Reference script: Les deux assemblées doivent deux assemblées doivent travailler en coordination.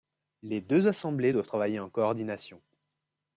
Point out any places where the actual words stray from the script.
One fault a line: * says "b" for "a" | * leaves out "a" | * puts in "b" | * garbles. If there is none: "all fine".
* leaves out "deux assemblées doivent"